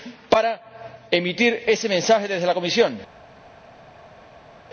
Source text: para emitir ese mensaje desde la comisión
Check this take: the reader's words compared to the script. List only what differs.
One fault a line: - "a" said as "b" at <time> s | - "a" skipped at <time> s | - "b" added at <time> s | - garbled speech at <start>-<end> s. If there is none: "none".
none